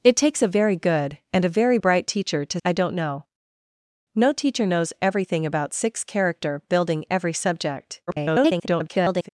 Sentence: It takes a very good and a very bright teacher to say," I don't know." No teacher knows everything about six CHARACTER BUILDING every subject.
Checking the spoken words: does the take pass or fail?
fail